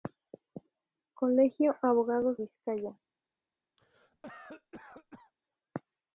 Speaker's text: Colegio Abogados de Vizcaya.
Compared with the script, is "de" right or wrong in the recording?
wrong